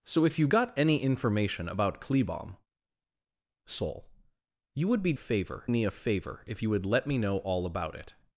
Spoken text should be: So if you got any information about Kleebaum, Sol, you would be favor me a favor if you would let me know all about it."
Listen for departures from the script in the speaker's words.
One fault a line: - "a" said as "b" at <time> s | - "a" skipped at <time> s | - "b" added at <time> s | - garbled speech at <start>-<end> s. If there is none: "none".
none